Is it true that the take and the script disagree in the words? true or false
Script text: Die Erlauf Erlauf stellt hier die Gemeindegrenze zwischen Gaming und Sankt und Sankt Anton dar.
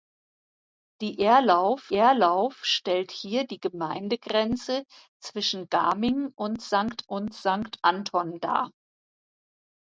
false